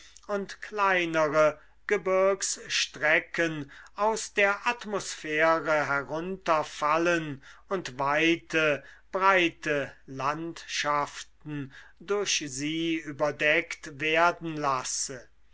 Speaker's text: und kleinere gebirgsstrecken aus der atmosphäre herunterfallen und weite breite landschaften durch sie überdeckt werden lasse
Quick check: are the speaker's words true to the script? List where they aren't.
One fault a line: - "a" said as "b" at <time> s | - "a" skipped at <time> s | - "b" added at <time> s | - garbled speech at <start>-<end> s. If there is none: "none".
none